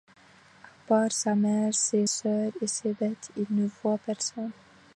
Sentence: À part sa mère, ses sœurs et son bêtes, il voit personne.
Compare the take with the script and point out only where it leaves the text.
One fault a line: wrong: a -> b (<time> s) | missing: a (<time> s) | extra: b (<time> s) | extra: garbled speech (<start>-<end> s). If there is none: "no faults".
wrong: son -> ses (2.7 s)
extra: ne (3.5 s)